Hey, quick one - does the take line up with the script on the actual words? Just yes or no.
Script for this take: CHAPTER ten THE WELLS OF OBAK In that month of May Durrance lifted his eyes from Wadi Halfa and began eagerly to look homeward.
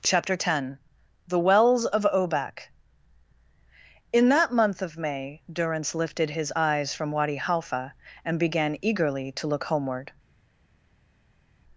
yes